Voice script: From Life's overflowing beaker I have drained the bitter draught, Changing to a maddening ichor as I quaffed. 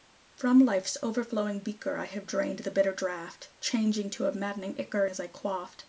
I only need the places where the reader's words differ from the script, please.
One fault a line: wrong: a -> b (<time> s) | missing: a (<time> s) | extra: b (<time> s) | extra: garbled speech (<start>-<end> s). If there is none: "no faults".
no faults